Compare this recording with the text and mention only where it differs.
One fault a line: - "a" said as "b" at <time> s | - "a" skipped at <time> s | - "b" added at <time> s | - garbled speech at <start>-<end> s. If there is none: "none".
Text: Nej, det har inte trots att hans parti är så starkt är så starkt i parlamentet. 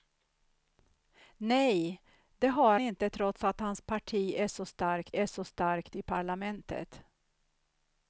none